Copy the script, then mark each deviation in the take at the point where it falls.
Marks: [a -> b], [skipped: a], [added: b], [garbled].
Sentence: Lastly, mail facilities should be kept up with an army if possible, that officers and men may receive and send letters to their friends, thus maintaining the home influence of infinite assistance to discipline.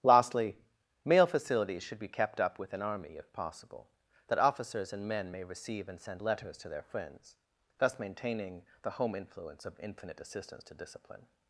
Lastly, mail facilities should be kept up with an army if possible, that officers and men may receive and send letters to their friends, thus maintaining the home influence of infinite assistance to discipline.